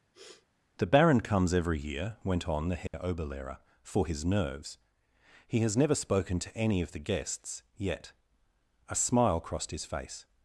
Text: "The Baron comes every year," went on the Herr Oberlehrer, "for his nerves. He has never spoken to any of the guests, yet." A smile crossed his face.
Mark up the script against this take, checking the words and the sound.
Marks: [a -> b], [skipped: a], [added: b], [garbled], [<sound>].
[sniff] "The Baron comes every year," went on the Herr [dropout] Oberlehrer, "for his nerves. He has never spoken to any of the guests, yet." A smile crossed his face.